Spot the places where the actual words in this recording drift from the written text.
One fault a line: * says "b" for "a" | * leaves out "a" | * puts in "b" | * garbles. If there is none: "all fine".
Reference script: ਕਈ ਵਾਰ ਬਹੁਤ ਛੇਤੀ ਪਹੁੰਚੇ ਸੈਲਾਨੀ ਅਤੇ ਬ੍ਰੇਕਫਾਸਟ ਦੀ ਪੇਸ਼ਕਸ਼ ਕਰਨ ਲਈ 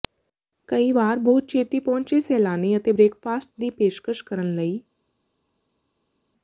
all fine